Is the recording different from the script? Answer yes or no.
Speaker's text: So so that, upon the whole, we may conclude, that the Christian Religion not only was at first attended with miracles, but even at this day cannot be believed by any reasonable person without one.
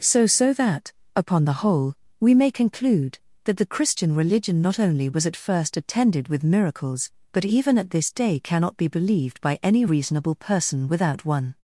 no